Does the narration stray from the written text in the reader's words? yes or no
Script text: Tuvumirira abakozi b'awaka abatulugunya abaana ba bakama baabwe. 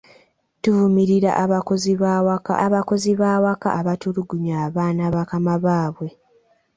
yes